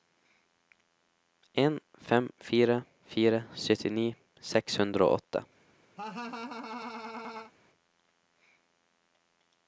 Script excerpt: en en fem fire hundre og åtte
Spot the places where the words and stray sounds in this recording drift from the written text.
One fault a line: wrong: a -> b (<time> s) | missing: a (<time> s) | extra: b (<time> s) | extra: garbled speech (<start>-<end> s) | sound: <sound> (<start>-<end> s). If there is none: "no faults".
missing: en (1.8 s)
extra: fire syttini seks (3.1 s)
sound: laugh (6.0-7.5 s)